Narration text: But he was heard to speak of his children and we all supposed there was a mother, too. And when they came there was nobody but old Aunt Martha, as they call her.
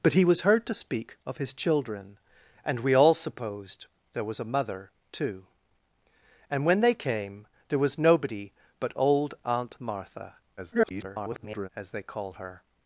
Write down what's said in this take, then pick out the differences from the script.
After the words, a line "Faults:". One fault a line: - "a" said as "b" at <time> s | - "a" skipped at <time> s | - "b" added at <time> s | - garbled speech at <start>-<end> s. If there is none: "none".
But he was heard to speak of his children and we all supposed there was a mother, too. And when they came there was nobody but old Aunt Martha, [garbled] as they call her.
Faults:
- garbled speech at 10.6-11.7 s